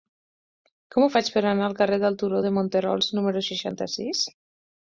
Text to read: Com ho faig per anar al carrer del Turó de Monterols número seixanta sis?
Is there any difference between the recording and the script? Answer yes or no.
no